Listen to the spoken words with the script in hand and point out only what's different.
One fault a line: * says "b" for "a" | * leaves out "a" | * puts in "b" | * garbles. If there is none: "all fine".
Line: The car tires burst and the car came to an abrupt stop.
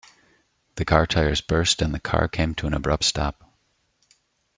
all fine